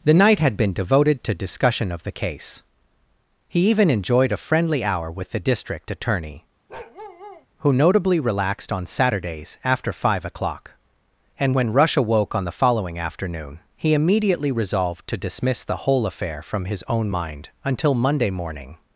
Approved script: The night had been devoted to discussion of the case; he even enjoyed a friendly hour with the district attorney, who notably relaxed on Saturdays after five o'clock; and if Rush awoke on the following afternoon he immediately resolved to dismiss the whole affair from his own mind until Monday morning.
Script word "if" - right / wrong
wrong